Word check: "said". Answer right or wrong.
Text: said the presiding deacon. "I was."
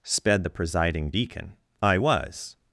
wrong